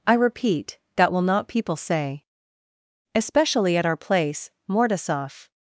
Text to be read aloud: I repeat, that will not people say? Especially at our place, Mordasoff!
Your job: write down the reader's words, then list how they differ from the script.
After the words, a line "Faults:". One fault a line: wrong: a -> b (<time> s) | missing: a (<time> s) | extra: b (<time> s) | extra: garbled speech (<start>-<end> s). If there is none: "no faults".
I repeat, that will not people say? Especially at our place, Mordasoff!
Faults:
no faults